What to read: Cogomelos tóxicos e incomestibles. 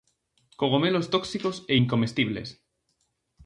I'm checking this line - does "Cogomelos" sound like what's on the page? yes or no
yes